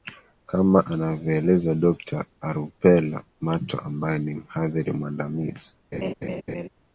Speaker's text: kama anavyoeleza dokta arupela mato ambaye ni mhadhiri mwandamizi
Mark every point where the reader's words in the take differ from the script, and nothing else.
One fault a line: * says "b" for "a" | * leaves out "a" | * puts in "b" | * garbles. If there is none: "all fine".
all fine